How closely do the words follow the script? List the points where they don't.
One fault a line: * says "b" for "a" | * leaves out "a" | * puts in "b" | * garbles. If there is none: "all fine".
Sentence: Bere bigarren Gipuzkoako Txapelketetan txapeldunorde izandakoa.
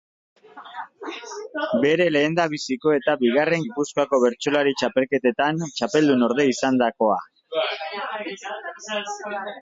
* puts in "lehendabiziko eta"
* puts in "Bertsolari"